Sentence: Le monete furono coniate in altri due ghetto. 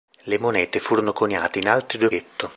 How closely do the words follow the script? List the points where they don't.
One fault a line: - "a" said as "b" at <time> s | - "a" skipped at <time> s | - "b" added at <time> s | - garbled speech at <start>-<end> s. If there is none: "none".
none